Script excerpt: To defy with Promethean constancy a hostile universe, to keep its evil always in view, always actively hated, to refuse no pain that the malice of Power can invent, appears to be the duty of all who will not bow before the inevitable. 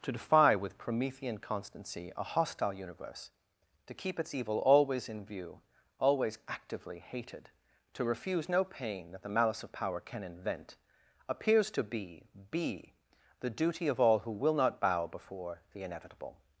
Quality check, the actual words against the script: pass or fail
fail